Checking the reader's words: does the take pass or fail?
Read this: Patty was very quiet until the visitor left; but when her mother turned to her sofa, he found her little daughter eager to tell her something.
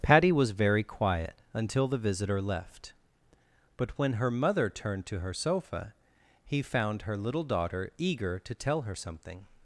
pass